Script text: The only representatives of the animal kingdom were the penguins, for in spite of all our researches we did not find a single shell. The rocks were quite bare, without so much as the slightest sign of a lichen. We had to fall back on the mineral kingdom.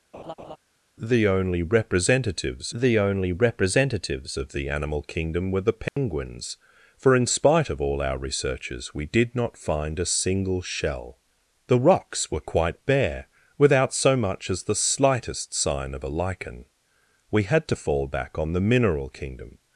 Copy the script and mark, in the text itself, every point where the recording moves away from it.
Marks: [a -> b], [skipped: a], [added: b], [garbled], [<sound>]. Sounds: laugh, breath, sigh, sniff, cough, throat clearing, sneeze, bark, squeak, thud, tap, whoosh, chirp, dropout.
[laugh] The only representatives [added: the only representatives] of the animal kingdom were the penguins, [dropout] for in spite of all our researches we did not find a single shell. The rocks were quite bare, without so much as the slightest sign of a lichen. We had to fall back on the mineral kingdom.